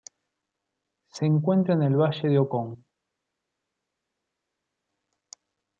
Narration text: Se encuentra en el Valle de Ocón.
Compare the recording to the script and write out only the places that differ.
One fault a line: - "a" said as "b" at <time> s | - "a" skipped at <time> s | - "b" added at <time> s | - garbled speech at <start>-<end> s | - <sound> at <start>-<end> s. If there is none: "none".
none